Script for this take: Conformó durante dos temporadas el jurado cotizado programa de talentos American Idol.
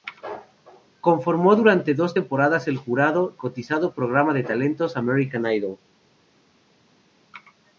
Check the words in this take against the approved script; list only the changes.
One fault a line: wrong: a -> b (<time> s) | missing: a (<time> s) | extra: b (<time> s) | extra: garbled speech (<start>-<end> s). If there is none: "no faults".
no faults